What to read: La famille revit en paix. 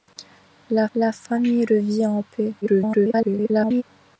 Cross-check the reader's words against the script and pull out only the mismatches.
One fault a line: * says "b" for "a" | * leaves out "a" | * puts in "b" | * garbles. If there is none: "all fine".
* puts in "la"
* garbles